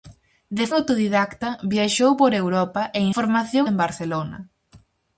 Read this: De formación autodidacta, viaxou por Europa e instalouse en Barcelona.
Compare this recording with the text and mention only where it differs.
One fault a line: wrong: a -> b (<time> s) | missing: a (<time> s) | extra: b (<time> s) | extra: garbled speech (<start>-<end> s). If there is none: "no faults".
missing: formación (0.7 s)
wrong: instalouse -> formación (3.2 s)